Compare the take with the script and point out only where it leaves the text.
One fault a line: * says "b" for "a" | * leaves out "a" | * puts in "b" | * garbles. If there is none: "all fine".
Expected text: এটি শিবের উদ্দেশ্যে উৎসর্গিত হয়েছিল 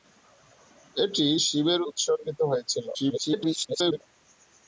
* leaves out "উদ্দেশ্যে"
* garbles